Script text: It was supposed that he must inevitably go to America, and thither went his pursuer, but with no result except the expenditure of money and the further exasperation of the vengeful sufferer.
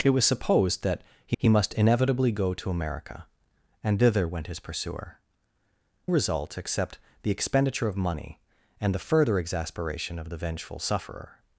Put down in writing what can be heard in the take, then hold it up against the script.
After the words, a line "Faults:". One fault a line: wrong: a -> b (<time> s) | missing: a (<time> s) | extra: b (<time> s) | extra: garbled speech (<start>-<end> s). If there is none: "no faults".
It was supposed that he he must inevitably go to America, and thither went his pursuer, result except the expenditure of money and the further exasperation of the vengeful sufferer.
Faults:
extra: he (1.4 s)
missing: but with no (5.2 s)